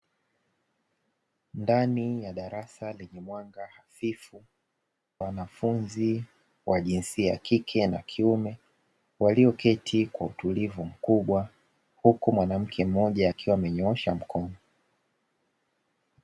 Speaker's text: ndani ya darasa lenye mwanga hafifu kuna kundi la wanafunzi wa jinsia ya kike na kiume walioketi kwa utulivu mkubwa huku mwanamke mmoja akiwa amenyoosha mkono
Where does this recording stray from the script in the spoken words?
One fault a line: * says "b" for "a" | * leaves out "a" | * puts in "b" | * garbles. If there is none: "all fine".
* leaves out "kuna kundi la"